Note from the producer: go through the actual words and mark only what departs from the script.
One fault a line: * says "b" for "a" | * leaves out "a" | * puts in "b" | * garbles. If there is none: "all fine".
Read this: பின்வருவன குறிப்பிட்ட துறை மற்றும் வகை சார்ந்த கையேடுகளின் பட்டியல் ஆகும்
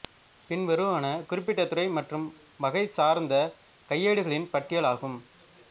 all fine